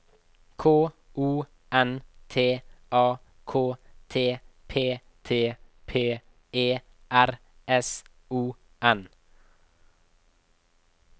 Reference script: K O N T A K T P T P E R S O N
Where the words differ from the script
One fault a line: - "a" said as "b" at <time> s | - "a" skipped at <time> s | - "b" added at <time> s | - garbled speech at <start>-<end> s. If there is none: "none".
none